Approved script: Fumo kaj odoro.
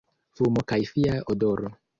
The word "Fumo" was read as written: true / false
true